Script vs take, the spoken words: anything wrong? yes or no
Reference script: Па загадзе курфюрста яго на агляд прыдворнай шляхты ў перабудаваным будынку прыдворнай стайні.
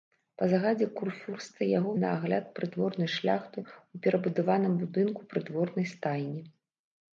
no